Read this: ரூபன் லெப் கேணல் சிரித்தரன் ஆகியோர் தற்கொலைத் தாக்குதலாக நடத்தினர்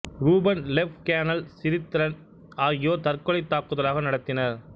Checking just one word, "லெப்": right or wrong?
right